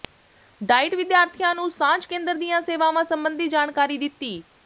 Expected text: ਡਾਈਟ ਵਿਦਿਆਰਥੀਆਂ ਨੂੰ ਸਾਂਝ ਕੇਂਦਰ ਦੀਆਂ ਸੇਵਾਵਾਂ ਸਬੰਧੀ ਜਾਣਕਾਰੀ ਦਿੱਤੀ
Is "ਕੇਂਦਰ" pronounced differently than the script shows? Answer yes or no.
no